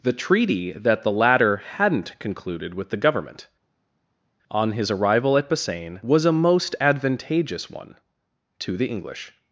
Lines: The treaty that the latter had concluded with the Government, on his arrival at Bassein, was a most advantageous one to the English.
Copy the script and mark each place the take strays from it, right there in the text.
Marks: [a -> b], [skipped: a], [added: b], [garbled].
The treaty that the latter [had -> hadn't] concluded with the Government, on his arrival at Bassein, was a most advantageous one to the English.